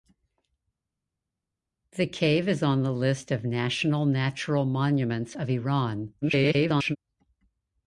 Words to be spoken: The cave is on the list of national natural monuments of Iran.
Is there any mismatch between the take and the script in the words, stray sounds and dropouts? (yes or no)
yes